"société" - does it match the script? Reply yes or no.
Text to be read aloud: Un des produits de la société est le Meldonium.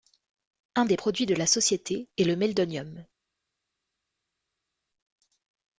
yes